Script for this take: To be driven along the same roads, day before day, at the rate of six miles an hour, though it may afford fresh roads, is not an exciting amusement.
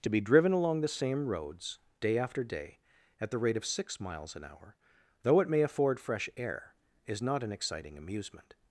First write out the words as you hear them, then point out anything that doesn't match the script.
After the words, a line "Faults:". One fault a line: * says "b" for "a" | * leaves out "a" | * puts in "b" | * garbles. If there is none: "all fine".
To be driven along the same roads, day after day, at the rate of six miles an hour, though it may afford fresh air, is not an exciting amusement.
Faults:
* says "after" for "before"
* says "air" for "roads"